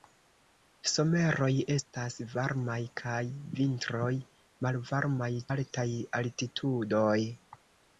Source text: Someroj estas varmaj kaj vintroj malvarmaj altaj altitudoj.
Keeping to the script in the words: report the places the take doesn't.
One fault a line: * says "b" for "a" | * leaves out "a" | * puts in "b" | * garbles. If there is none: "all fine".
all fine